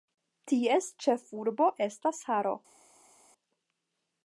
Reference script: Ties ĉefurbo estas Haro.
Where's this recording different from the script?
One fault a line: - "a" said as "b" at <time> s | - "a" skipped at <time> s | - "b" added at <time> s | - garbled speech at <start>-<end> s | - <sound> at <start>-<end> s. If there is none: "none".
none